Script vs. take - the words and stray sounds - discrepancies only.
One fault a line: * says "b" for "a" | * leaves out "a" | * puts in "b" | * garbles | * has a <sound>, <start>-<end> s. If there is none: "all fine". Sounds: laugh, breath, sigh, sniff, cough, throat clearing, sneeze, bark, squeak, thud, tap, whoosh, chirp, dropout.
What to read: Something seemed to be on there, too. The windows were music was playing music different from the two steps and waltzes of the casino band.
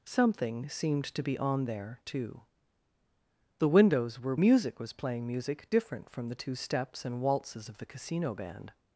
all fine